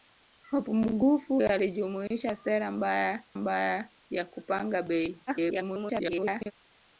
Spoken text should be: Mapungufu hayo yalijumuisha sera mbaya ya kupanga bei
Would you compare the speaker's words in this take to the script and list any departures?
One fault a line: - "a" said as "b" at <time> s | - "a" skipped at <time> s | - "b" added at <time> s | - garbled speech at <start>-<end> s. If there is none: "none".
- "hayo" skipped at 1.4 s
- "mbaya" added at 3.3 s
- garbled speech at 5.3-6.5 s